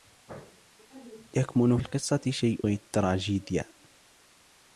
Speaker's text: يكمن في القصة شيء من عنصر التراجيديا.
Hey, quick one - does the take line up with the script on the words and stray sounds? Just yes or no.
no